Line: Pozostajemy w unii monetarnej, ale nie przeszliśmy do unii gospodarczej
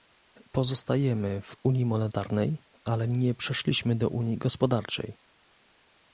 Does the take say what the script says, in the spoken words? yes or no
yes